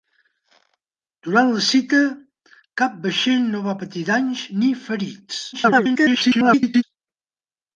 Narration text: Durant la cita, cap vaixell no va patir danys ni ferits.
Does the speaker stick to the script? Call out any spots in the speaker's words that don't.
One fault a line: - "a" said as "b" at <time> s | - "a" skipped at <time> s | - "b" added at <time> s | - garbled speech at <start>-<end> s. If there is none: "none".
- garbled speech at 5.5-6.8 s